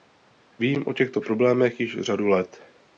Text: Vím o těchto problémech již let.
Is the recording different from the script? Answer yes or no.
yes